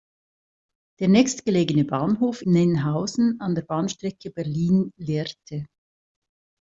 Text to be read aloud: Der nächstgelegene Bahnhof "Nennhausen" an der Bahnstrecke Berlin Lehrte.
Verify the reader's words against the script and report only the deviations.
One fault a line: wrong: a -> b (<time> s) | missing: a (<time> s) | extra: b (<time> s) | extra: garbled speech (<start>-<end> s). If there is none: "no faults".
no faults